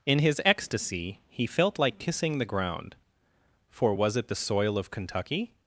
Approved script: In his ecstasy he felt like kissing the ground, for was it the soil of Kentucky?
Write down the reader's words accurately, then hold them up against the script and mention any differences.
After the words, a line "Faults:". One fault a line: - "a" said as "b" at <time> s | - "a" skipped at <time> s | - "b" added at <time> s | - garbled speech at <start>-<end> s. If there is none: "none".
In his ecstasy he felt like kissing the ground, for was it the soil of Kentucky?
Faults:
none